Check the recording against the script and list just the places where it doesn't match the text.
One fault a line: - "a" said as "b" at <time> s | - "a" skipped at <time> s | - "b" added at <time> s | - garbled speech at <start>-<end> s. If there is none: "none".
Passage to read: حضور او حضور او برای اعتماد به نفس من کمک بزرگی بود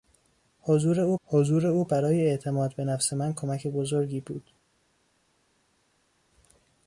none